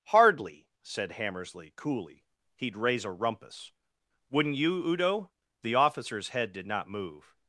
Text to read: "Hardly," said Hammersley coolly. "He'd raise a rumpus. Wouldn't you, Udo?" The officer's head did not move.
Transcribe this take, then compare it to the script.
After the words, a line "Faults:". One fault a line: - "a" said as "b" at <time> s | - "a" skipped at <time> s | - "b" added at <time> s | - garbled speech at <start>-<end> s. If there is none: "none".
"Hardly," said Hammersley coolly. "He'd raise a rumpus. Wouldn't you, Udo?" The officer's head did not move.
Faults:
none